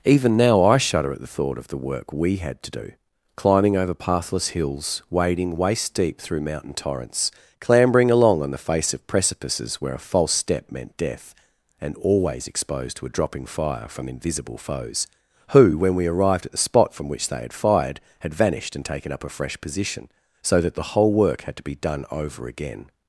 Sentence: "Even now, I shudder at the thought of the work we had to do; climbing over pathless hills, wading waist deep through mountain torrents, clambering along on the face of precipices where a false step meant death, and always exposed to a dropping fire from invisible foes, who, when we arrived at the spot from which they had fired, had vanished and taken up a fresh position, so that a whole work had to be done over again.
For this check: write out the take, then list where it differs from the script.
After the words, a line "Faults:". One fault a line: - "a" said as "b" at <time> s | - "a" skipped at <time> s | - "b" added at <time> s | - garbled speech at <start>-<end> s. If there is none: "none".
"Even now, I shudder at the thought of the work we had to do; climbing over pathless hills, wading waist deep through mountain torrents, clambering along on the face of precipices where a false step meant death, and always exposed to a dropping fire from invisible foes, who, when we arrived at the spot from which they had fired, had vanished and taken up a fresh position, so that the whole work had to be done over again.
Faults:
- "a" said as "the" at 20.8 s